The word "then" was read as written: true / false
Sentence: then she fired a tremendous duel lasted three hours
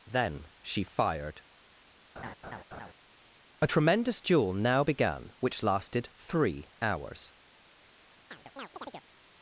true